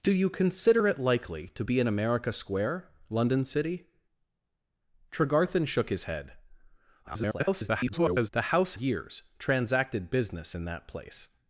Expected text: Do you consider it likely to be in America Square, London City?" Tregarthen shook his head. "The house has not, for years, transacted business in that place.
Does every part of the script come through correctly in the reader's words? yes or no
no